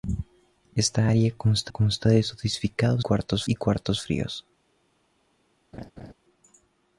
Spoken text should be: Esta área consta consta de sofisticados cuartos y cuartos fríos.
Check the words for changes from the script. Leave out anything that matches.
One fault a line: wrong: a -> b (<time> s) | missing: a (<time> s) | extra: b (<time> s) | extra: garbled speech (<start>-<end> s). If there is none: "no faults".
no faults